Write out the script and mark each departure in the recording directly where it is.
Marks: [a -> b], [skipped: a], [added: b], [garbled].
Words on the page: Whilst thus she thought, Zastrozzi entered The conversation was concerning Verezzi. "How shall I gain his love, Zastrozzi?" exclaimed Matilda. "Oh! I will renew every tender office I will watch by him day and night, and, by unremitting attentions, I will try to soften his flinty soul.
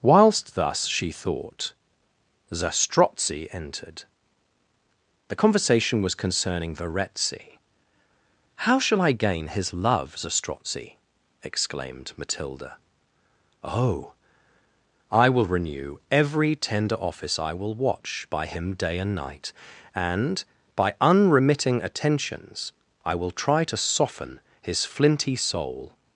Whilst thus she thought, Zastrozzi entered The conversation was concerning Verezzi. "How shall I gain his love, Zastrozzi?" exclaimed Matilda. "Oh! I will renew every tender office I will watch by him day and night, and, by unremitting attentions, I will try to soften his flinty soul.